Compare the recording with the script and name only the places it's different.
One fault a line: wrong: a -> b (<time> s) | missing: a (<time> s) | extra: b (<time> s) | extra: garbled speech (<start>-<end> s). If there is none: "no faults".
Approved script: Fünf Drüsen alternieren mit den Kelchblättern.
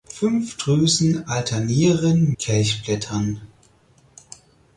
missing: mit den (2.3 s)